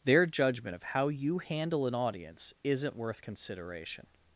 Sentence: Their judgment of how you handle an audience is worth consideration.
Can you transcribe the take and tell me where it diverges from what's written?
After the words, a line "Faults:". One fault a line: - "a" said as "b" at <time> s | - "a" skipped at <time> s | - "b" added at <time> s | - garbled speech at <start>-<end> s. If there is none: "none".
Their judgment of how you handle an audience isn't worth consideration.
Faults:
- "is" said as "isn't" at 2.6 s